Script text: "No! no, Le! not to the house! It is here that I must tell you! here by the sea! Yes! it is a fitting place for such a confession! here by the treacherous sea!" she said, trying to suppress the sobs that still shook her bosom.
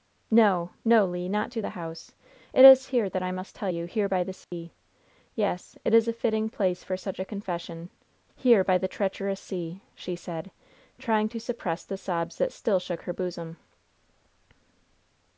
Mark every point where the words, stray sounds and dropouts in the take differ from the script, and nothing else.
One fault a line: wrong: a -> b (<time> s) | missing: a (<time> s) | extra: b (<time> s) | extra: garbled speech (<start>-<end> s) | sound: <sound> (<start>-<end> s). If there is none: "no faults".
sound: dropout (4.4-4.5 s)